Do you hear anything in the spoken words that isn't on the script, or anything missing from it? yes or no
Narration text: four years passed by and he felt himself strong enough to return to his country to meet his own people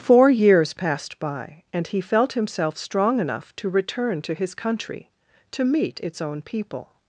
yes